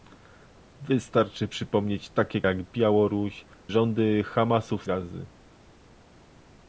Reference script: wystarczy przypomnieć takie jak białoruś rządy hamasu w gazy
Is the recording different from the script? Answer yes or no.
no